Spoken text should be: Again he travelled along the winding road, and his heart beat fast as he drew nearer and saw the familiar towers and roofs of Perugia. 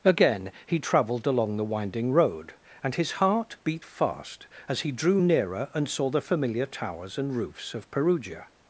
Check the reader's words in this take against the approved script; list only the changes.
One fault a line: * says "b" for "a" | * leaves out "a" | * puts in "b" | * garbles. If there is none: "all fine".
all fine